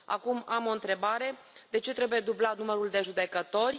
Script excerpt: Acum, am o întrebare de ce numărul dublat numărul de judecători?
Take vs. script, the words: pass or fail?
fail